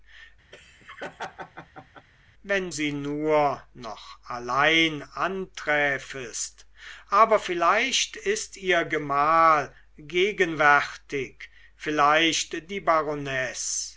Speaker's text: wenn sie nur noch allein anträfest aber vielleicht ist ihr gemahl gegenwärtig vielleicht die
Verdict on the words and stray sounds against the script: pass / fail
fail